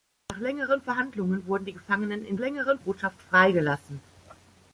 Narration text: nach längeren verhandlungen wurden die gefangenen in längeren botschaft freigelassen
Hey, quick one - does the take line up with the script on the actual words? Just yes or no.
yes